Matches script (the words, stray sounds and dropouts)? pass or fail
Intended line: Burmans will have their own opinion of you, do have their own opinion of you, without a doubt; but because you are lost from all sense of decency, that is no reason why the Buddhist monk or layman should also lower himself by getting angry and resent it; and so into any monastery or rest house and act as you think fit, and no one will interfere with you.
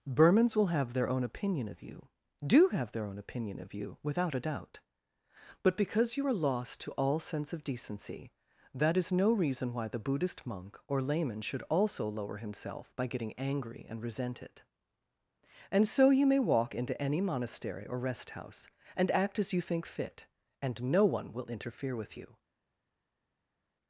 fail